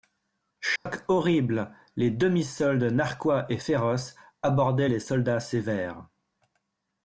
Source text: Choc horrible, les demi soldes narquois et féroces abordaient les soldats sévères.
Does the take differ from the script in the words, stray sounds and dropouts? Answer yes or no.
yes